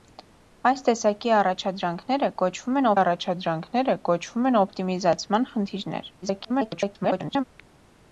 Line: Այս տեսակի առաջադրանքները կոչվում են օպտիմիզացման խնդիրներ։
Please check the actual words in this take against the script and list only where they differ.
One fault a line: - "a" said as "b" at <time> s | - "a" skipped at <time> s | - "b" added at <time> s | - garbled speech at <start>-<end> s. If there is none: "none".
- "առաջադրանքները կոչվում են" added at 3.0 s
- garbled speech at 6.2-7.4 s